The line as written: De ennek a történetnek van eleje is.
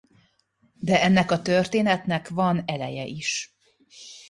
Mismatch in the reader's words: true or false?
false